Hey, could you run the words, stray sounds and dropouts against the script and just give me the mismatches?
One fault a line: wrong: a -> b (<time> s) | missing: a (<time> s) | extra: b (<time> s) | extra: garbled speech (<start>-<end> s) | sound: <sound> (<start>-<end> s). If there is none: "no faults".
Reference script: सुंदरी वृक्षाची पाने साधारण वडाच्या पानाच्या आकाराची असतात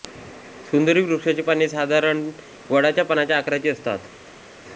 no faults